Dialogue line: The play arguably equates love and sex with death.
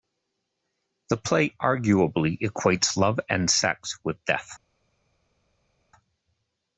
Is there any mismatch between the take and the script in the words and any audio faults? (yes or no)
no